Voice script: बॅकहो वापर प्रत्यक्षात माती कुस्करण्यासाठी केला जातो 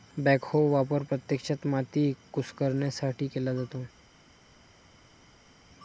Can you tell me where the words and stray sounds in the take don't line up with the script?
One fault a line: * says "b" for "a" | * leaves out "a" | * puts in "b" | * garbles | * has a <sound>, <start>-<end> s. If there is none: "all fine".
all fine